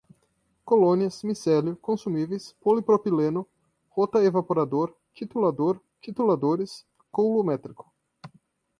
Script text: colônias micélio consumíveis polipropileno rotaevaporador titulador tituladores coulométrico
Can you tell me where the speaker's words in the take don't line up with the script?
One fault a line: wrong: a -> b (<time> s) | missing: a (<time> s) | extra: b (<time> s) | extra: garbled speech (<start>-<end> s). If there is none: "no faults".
no faults